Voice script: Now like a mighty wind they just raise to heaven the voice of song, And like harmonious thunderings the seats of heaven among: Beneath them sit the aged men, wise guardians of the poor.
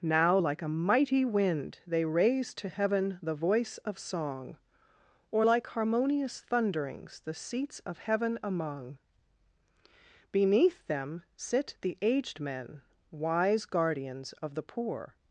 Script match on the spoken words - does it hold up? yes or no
no